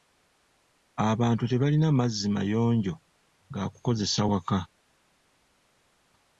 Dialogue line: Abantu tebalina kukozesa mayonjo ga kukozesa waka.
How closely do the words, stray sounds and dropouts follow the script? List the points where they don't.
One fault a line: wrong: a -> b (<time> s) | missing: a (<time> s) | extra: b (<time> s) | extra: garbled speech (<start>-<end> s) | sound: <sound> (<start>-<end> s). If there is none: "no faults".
wrong: kukozesa -> mazzi (2.0 s)